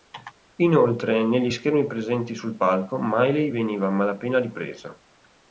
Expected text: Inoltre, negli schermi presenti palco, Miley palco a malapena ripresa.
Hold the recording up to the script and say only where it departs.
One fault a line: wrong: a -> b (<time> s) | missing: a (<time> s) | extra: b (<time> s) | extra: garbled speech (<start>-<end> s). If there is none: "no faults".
extra: sul (2.3 s)
wrong: palco -> veniva (3.5 s)